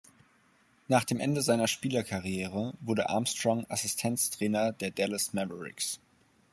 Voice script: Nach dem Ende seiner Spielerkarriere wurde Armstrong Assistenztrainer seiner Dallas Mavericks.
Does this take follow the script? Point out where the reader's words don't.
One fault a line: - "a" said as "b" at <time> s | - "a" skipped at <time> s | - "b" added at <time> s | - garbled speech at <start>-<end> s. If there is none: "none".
- "seiner" said as "der" at 4.7 s